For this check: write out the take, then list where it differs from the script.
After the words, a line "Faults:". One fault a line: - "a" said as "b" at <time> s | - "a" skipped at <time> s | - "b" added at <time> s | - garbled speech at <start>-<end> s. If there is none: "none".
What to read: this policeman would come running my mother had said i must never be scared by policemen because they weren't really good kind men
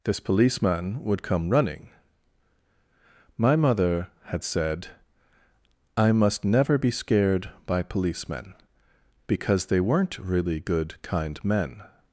this policeman would come running my mother had said i must never be scared by policemen because they weren't really good kind men
Faults:
none